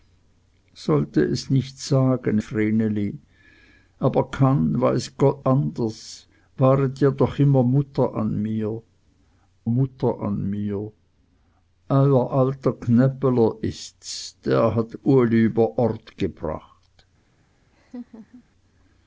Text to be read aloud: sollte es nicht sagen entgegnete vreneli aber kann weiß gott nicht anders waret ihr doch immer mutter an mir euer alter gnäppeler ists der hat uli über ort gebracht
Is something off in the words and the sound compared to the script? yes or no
yes